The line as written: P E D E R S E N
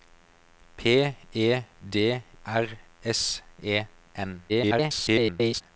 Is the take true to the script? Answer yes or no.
no